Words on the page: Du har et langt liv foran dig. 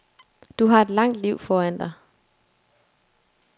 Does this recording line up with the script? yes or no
yes